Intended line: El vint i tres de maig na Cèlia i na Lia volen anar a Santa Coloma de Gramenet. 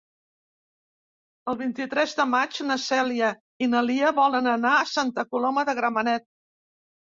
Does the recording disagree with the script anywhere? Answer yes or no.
no